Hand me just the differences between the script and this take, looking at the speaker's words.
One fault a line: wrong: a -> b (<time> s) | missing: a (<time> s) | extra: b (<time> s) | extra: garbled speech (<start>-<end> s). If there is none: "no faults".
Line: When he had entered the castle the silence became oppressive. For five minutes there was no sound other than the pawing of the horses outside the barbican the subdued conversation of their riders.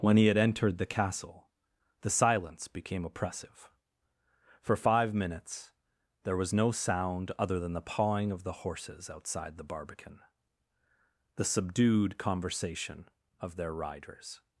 no faults